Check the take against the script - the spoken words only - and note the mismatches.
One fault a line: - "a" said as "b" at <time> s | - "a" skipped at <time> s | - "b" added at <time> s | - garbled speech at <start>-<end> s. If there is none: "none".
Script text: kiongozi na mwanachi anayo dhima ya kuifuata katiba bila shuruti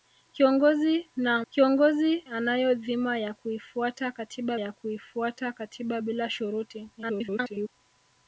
- "mwanachi" said as "kiongozi" at 1.5 s
- "ya kuifuata katiba" added at 4.6 s
- garbled speech at 7.0-7.7 s